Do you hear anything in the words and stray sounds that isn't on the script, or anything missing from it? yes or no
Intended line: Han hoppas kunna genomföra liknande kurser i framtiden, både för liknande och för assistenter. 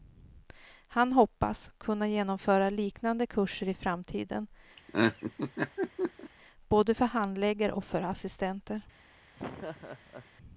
yes